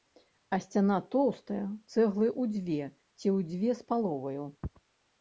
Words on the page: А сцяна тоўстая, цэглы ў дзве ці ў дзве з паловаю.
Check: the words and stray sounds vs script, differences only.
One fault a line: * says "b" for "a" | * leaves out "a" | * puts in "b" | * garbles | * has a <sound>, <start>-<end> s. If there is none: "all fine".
all fine